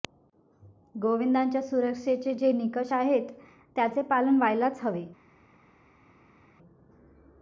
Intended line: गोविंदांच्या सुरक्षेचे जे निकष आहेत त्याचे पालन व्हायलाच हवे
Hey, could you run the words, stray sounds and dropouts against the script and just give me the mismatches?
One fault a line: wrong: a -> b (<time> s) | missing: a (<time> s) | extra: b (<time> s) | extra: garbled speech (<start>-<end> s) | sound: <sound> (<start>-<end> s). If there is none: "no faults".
no faults